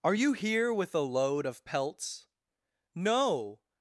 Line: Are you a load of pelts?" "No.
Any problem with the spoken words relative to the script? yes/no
yes